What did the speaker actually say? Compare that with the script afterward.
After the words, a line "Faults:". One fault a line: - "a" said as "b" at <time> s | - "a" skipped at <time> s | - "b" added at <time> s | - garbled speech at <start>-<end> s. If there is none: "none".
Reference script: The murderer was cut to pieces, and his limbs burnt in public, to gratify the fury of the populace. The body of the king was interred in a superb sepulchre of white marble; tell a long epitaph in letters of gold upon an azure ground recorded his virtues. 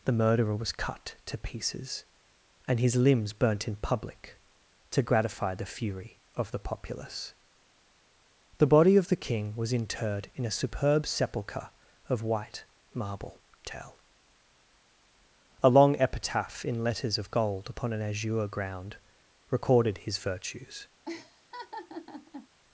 The murderer was cut to pieces, and his limbs burnt in public, to gratify the fury of the populace. The body of the king was interred in a superb sepulchre of white marble; tell a long epitaph in letters of gold upon an azure ground recorded his virtues.
Faults:
none